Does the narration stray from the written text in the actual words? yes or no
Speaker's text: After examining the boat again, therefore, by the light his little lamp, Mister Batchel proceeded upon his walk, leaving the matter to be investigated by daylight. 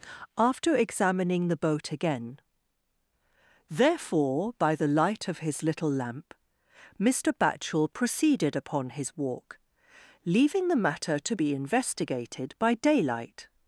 yes